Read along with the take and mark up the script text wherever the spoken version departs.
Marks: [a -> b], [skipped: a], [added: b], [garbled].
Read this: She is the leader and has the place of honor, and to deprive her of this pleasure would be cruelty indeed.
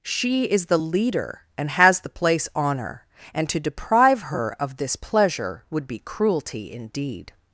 She is the leader and has the place [skipped: of] honor, and to deprive her of this pleasure would be cruelty indeed.